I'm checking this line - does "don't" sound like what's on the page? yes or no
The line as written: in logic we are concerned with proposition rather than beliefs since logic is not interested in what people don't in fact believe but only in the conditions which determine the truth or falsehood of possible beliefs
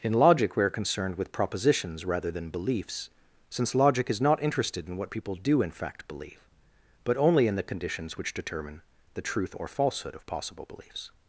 no